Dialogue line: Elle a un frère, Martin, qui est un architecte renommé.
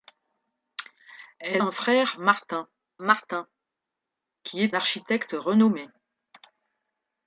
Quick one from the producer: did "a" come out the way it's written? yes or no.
no